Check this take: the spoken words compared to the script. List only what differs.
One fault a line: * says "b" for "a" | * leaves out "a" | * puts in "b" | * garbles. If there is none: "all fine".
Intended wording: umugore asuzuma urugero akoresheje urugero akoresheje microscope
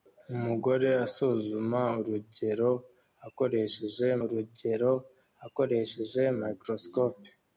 all fine